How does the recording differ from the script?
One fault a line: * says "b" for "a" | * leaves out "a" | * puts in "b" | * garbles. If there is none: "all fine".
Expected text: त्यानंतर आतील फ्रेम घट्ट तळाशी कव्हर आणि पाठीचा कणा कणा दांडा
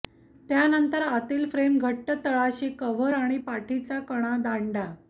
* leaves out "कणा"